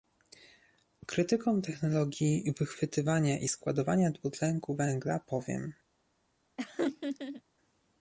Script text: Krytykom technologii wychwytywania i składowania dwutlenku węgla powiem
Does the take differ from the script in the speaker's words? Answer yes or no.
no